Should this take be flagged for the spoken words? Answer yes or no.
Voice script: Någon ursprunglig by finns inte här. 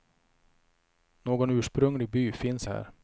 yes